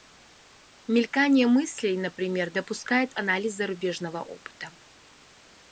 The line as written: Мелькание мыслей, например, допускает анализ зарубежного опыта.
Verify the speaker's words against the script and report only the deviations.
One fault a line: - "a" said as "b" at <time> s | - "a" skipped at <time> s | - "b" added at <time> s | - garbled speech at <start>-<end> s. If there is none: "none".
none